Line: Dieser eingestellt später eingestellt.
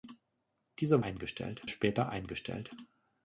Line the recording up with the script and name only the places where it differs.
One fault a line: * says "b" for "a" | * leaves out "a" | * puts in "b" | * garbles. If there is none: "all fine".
all fine